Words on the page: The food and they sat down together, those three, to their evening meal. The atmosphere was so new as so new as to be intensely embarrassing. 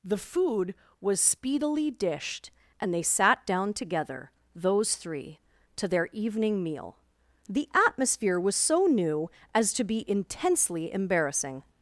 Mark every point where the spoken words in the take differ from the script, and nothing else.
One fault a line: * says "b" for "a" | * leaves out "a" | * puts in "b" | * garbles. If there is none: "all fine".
* puts in "was speedily dished"
* leaves out "so new as"